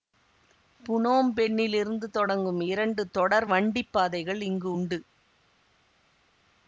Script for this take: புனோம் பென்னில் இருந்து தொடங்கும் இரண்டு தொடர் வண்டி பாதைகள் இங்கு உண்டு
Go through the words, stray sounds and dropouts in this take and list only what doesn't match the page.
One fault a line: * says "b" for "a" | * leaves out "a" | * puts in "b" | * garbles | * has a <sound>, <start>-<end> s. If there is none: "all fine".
all fine